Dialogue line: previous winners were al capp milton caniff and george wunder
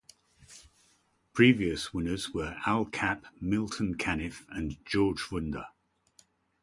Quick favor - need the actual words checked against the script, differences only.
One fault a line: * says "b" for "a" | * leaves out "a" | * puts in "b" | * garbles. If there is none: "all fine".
all fine